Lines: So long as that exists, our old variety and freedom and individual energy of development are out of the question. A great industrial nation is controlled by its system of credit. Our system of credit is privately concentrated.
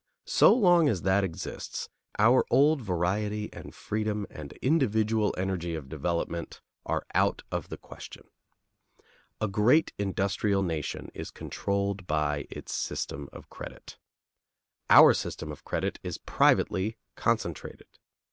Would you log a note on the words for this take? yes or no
no